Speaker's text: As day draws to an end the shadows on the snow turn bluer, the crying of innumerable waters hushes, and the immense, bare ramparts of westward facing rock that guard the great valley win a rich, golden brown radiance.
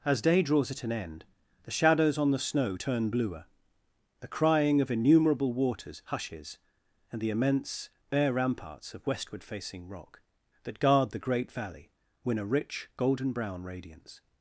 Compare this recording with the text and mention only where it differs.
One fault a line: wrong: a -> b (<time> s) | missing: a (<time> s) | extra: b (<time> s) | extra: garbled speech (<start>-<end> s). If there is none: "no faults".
wrong: to -> at (0.7 s)